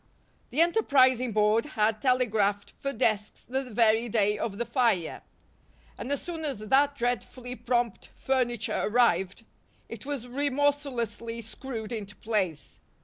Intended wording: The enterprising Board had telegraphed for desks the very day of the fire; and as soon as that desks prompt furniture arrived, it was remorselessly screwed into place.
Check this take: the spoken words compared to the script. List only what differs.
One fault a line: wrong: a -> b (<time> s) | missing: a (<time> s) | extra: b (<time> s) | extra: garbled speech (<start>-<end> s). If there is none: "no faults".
wrong: desks -> dreadfully (7.0 s)